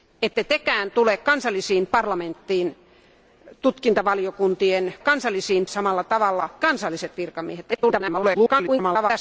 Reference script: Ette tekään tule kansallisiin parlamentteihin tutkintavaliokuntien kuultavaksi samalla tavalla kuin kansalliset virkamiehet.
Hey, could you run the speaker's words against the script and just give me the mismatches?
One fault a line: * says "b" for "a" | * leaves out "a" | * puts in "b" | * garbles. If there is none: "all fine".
* says "kansallisiin" for "kuultavaksi"
* leaves out "kuin"
* garbles